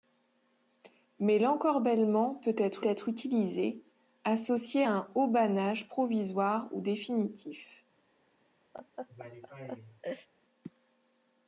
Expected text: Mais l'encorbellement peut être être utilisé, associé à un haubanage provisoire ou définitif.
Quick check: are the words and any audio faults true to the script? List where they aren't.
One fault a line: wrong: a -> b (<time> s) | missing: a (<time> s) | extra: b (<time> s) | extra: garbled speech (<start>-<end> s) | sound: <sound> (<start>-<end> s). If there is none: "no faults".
sound: laugh (8.7-10.3 s)